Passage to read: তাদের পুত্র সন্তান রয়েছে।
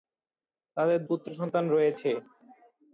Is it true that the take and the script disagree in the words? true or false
false